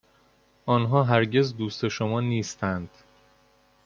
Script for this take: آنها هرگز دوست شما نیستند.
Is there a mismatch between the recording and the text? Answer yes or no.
no